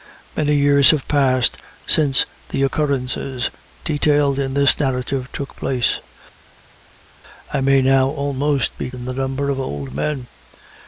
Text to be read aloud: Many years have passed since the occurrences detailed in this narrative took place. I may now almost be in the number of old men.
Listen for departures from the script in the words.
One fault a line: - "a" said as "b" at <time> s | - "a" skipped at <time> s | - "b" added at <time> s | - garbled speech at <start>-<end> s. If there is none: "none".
none